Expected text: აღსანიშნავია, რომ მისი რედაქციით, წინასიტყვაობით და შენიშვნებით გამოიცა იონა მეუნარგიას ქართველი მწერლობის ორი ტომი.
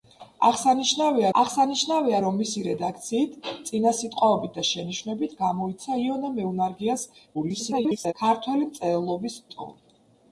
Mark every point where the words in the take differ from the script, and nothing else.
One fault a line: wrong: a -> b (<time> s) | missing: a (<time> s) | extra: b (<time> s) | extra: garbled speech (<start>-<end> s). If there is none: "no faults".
extra: აღსანიშნავია (1.4 s)
extra: garbled speech (7.3-8.1 s)
missing: ორი (9.4 s)